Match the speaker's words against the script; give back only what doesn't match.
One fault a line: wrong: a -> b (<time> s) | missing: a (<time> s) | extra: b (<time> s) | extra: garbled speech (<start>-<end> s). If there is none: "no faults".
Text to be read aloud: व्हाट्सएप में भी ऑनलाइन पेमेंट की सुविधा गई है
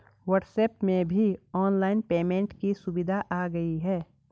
extra: आ (3.3 s)